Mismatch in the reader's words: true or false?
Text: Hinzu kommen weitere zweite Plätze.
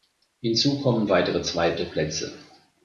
false